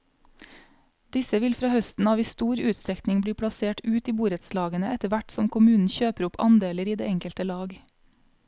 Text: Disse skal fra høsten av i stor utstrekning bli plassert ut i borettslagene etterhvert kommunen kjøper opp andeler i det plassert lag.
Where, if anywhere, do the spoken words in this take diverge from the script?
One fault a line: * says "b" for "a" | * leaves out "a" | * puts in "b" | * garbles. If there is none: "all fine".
* says "vil" for "skal"
* puts in "som"
* says "enkelte" for "plassert"